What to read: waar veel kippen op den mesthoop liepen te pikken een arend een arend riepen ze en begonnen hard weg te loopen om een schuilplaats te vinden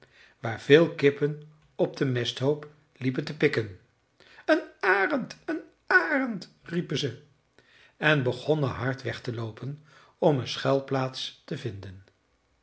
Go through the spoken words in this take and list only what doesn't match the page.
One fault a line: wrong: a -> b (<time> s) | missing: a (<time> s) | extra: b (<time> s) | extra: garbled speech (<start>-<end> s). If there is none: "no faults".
no faults